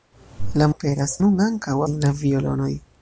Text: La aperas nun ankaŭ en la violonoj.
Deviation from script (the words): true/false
false